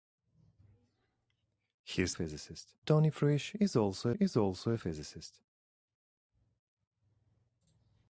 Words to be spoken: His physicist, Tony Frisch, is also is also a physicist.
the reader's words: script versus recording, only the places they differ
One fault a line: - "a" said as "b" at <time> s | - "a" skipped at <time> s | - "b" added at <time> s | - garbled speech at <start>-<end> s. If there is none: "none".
none